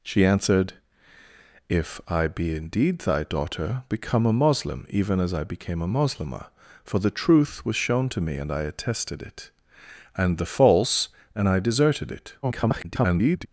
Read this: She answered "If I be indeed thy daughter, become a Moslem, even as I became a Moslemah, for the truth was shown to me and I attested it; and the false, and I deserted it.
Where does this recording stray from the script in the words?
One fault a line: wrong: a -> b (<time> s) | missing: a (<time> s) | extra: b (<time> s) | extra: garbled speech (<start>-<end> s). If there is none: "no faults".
extra: garbled speech (12.4-13.5 s)